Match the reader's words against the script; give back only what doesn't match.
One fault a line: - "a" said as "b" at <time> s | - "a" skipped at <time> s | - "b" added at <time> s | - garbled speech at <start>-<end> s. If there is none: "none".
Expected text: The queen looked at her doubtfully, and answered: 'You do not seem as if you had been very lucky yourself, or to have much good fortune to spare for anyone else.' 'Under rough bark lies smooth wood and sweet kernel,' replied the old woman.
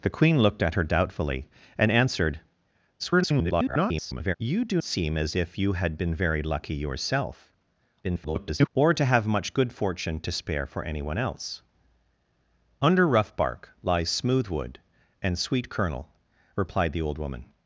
- garbled speech at 3.0-4.3 s
- "not" skipped at 4.8 s
- garbled speech at 8.0-8.7 s